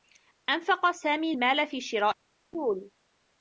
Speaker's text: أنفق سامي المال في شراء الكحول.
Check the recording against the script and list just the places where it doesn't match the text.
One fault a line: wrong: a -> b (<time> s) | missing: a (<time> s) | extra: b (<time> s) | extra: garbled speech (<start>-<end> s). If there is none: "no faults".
no faults